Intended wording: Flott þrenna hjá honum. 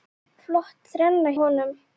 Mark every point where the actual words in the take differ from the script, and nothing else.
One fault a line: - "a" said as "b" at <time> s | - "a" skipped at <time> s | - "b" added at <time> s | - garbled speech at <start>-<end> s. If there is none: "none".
- "hjá" skipped at 1.4 s